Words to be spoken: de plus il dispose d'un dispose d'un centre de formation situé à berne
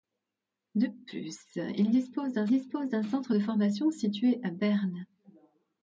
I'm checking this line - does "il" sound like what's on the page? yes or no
yes